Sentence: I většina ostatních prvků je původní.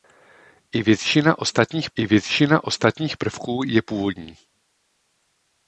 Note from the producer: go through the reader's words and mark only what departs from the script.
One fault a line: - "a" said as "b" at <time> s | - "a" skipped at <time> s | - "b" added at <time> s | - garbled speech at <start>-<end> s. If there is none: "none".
- "I většina ostatních" added at 1.9 s